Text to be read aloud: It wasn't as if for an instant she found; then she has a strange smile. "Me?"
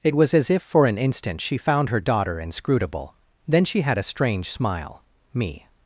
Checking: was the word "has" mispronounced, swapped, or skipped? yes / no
yes